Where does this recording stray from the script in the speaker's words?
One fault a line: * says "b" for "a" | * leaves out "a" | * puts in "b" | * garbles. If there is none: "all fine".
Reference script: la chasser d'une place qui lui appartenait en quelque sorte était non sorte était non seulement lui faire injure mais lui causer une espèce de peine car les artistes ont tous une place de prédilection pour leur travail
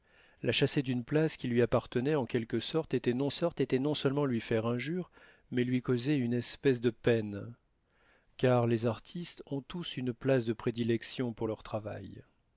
all fine